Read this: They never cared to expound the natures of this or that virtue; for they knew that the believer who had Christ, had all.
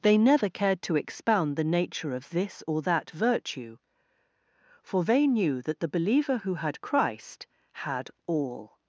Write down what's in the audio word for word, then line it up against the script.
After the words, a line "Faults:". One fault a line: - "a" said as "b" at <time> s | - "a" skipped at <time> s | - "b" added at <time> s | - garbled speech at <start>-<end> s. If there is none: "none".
They never cared to expound the nature of this or that virtue; for they knew that the believer who had Christ, had all.
Faults:
- "natures" said as "nature" at 1.6 s